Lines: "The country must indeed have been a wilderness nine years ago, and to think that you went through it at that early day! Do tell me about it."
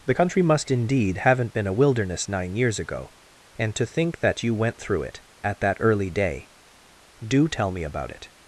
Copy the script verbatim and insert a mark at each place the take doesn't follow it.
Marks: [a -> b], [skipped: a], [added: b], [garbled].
"The country must indeed [have -> haven't] been a wilderness nine years ago, and to think that you went through it at that early day! Do tell me about it."